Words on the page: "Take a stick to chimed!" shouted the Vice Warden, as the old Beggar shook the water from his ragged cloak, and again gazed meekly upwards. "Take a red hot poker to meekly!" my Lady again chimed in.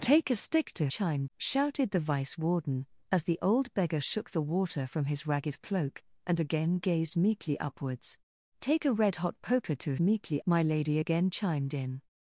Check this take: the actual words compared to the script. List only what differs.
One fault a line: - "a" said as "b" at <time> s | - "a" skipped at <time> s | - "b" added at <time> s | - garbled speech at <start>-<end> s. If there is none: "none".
none